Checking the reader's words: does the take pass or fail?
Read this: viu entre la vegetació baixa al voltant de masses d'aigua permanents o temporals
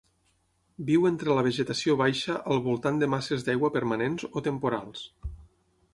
pass